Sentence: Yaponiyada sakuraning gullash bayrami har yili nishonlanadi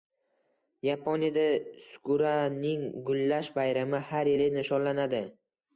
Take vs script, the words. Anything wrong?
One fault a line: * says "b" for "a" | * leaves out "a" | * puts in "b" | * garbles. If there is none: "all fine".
all fine